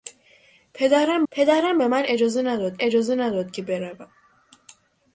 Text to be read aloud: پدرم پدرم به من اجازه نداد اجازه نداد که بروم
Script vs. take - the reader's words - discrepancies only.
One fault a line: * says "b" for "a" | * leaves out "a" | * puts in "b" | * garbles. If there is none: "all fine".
all fine